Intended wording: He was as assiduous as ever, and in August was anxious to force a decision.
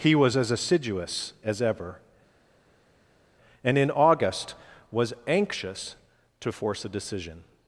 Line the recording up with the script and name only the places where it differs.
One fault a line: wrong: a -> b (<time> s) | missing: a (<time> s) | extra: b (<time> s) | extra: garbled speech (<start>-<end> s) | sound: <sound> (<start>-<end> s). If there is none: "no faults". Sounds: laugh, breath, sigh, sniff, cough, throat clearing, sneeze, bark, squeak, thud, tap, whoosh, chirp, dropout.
no faults